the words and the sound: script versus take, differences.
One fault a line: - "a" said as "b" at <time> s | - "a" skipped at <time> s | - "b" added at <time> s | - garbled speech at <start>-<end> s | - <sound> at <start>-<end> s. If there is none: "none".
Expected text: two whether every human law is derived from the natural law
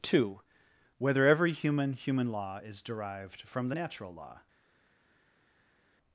- "human" added at 1.9 s